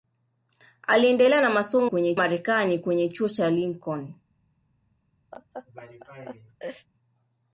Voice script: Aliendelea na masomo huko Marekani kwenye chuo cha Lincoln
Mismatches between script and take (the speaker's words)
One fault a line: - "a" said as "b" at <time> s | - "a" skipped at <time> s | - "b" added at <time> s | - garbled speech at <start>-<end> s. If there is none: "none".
- "huko" said as "kwenye" at 1.8 s